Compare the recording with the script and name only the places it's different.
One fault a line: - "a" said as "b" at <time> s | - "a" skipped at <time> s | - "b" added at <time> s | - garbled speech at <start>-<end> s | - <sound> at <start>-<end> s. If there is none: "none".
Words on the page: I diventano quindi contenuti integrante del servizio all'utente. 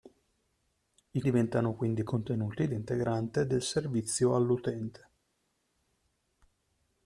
none